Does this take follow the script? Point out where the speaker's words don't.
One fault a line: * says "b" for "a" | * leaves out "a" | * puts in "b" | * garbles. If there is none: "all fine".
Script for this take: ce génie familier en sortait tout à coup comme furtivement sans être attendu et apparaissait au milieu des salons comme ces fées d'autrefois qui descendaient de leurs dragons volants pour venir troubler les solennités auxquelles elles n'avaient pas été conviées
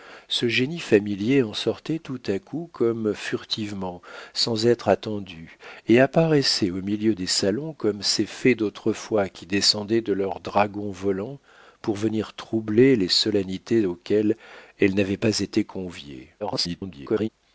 * garbles